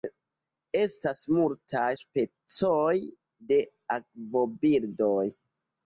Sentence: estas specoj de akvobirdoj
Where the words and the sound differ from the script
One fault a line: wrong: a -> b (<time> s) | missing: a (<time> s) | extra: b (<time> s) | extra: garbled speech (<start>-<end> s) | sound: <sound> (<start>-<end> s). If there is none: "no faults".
extra: multaj (1.3 s)